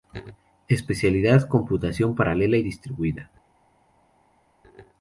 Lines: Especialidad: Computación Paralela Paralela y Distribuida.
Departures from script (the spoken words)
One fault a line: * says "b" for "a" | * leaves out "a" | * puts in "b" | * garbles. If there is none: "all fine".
* leaves out "Paralela"